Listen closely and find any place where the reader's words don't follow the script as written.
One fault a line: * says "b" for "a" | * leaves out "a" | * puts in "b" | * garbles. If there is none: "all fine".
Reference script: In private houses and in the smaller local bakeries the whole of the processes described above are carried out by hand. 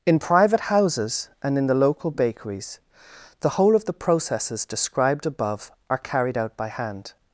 * leaves out "smaller"